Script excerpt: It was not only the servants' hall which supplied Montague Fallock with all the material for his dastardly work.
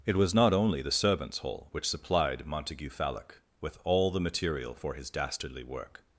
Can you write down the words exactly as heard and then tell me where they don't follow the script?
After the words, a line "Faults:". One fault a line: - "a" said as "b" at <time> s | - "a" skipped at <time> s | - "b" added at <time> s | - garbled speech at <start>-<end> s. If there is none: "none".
It was not only the servants' hall which supplied Montague Fallock with all the material for his dastardly work.
Faults:
none